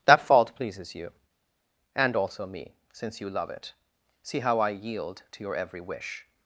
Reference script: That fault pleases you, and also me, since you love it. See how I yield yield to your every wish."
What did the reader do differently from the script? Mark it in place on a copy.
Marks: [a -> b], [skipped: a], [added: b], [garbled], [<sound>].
That fault pleases you, and also me, since you love it. See how I yield [skipped: yield] to your every wish."